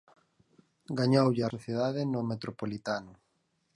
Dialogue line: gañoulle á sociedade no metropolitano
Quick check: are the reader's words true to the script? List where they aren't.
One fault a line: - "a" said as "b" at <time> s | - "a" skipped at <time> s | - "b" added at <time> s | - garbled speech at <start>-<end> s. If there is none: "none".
none